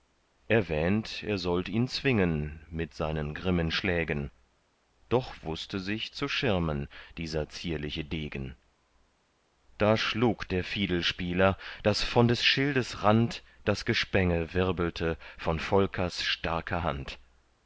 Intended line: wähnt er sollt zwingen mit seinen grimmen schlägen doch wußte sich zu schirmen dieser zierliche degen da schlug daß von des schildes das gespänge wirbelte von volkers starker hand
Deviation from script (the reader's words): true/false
true